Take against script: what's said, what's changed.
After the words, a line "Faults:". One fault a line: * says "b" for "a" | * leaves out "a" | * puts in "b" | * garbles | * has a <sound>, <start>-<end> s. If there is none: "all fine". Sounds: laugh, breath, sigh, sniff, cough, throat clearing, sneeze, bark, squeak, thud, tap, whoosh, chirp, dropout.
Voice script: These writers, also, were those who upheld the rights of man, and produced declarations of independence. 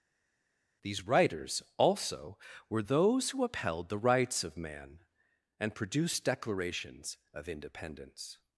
These writers, also, were those who upheld the rights of man, and produced declarations of independence.
Faults:
all fine